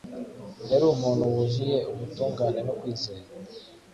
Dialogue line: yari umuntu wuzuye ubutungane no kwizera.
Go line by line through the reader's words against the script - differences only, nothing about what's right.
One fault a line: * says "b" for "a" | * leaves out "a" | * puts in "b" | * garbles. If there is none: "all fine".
all fine